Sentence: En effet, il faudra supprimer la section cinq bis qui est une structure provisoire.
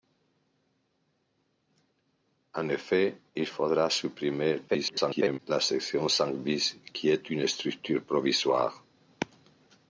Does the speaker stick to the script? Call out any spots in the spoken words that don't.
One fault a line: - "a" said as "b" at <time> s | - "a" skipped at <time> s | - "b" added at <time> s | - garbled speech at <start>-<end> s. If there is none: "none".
- garbled speech at 4.7-5.4 s